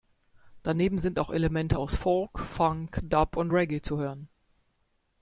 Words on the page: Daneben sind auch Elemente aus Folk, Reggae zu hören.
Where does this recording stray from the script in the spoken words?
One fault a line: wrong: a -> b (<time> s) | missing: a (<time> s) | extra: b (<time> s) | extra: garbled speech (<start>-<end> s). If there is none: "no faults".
extra: Funk Dub und (2.4 s)